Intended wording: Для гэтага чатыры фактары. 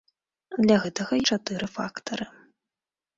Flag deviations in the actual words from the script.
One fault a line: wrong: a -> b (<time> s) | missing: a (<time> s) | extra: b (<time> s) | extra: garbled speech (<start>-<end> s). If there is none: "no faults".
no faults